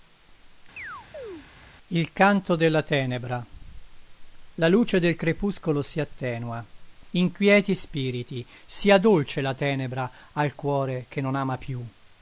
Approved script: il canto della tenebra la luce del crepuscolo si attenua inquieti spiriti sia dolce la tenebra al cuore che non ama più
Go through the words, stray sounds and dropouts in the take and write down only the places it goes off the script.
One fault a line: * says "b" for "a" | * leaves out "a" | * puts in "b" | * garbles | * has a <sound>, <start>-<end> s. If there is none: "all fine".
* has a chirp, 0.8-1.5 s